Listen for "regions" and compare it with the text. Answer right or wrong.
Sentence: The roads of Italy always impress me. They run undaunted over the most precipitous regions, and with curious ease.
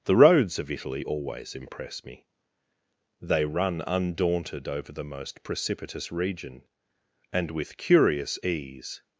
wrong